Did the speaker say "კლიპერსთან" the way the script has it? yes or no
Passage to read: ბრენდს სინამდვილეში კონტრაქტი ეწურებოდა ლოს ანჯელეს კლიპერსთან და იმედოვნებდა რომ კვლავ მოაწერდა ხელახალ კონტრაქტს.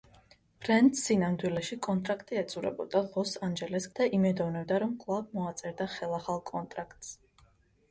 no